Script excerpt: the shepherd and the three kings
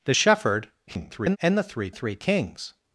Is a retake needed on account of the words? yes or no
yes